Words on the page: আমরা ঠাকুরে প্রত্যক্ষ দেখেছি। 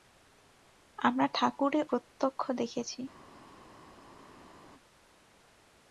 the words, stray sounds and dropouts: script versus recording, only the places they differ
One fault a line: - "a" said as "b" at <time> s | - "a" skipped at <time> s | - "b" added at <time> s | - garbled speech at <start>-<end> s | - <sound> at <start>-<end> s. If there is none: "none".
none